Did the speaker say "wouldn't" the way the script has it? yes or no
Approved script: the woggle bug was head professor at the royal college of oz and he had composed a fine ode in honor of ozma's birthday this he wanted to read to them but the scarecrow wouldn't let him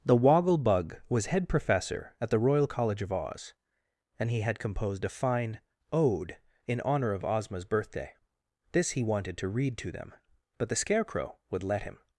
no